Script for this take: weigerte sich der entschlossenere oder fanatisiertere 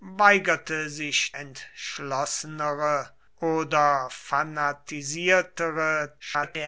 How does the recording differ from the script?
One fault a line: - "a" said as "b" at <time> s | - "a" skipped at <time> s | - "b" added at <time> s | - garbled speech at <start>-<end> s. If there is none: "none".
- "der" skipped at 1.4 s
- garbled speech at 6.2-6.7 s